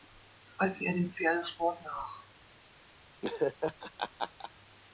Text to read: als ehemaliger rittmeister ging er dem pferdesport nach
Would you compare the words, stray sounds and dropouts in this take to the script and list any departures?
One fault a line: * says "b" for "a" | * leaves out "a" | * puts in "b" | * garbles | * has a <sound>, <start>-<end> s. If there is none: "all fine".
* leaves out "ehemaliger rittmeister ging"
* has a laugh, 3.2-4.5 s